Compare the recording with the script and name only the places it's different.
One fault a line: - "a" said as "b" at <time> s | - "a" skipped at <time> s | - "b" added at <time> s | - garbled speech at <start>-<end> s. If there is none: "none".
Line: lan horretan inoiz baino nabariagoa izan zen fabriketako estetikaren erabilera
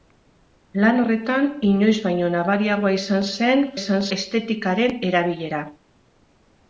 - "fabriketako" said as "izan" at 3.8 s